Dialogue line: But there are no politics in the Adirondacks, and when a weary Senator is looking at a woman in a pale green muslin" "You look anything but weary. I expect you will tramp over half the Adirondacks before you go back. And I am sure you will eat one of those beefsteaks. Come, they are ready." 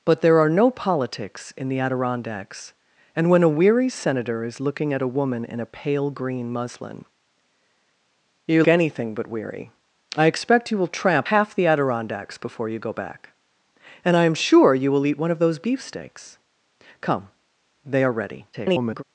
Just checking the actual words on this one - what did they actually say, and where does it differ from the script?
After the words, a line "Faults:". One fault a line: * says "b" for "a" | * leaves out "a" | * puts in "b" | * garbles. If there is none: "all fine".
But there are no politics in the Adirondacks, and when a weary Senator is looking at a woman in a pale green muslin" "You anything but weary. I expect you will tramp half the Adirondacks before you go back. And I am sure you will eat one of those beefsteaks. Come, they are ready." [garbled]
Faults:
* leaves out "look"
* leaves out "over"
* garbles